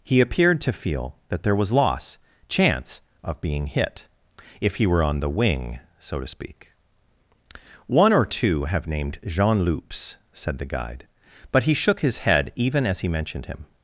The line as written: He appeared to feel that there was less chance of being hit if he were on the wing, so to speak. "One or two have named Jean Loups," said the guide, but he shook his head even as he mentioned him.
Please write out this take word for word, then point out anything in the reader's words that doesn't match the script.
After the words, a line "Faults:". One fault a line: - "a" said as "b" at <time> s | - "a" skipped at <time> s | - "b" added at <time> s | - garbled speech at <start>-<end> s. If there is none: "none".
He appeared to feel that there was loss chance of being hit if he were on the wing, so to speak. "One or two have named Jean Loups," said the guide, but he shook his head even as he mentioned him.
Faults:
- "less" said as "loss" at 1.7 s